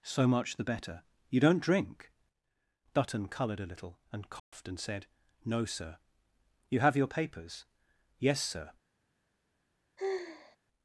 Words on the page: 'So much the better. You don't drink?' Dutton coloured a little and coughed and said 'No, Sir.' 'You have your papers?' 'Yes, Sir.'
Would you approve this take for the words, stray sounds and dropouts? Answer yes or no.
no